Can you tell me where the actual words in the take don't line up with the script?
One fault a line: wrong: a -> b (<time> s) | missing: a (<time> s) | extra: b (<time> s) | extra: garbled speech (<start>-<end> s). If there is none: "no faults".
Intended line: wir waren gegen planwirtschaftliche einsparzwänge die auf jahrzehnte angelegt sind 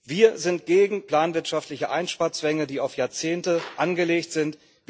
wrong: waren -> sind (0.4 s)